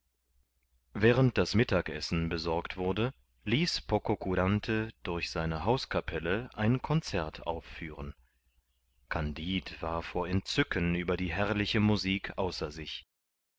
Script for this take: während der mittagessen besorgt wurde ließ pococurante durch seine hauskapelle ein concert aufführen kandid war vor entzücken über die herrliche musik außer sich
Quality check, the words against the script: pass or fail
fail